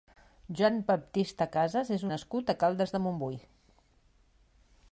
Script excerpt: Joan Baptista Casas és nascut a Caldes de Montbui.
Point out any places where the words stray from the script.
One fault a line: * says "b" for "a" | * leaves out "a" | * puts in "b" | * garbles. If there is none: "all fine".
all fine